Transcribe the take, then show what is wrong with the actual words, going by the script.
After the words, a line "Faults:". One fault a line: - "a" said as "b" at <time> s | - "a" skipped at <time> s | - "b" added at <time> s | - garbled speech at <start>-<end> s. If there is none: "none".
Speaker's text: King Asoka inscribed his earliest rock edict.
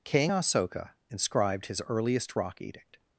King Asoka inscribed his earliest rock edict.
Faults:
none